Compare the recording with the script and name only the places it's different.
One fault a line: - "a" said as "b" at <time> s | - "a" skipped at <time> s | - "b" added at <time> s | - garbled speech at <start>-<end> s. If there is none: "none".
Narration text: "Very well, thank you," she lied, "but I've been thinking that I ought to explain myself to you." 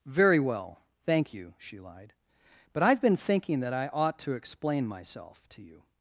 none